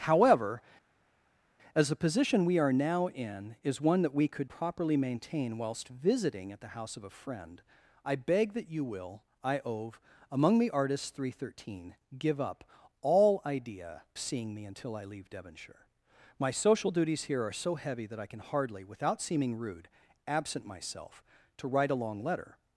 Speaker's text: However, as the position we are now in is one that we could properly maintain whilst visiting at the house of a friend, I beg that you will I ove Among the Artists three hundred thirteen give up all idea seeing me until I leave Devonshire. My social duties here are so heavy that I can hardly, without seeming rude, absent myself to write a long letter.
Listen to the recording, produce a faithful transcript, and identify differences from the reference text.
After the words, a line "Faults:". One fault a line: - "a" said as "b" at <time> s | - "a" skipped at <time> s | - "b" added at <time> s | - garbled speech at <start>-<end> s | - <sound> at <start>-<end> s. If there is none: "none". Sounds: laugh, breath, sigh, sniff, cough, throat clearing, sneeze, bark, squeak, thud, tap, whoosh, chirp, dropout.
However, as the position we are now in is one that we could properly maintain whilst visiting at the house of a friend, I beg that you will I ove Among the Artists three hundred thirteen give up all idea seeing me until I leave Devonshire. My social duties here are so heavy that I can hardly, without seeming rude, absent myself to write a long letter.
Faults:
none